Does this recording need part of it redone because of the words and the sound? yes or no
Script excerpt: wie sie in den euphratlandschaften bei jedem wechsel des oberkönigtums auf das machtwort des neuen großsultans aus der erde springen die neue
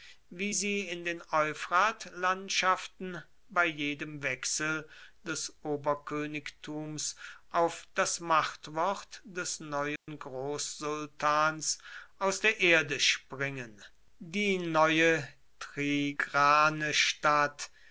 yes